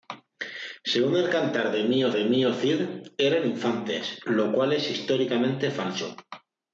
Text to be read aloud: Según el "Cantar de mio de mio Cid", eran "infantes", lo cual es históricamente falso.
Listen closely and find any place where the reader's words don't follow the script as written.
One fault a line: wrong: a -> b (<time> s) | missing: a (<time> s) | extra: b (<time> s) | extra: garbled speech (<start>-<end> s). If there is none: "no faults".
no faults